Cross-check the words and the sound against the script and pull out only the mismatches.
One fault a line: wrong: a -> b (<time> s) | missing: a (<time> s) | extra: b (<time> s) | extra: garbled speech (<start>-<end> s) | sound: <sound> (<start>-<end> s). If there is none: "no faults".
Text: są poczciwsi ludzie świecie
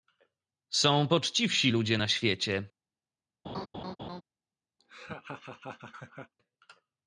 extra: na (1.9 s)
sound: laugh (3.4-4.2 s)
sound: laugh (4.8-6.3 s)